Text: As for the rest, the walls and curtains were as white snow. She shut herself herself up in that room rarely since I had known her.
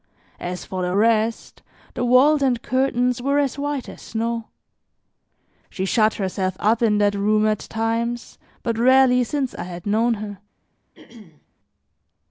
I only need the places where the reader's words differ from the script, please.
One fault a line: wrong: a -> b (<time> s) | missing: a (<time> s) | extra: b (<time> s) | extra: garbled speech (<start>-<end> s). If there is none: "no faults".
extra: as (3.9 s)
missing: herself (6.6 s)
extra: at times but (7.5 s)